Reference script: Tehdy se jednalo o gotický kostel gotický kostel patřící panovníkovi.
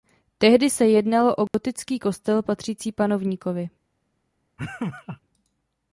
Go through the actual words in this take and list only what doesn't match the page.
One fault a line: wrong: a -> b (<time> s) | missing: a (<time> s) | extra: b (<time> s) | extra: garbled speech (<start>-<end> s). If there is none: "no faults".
missing: gotický kostel (2.4 s)